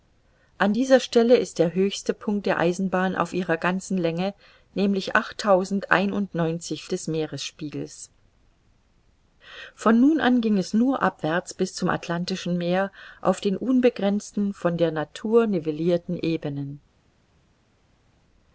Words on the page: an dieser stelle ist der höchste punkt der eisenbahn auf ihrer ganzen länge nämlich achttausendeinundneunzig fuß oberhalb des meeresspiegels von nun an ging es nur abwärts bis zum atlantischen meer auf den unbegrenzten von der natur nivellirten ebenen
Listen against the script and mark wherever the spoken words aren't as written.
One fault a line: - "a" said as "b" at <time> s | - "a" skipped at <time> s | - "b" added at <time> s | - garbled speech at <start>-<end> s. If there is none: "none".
- "fuß oberhalb" skipped at 6.9 s